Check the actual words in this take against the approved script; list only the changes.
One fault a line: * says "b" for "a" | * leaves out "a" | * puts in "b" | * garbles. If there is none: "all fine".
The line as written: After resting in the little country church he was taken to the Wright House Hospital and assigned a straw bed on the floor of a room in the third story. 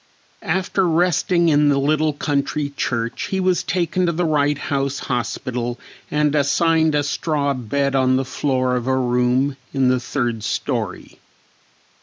all fine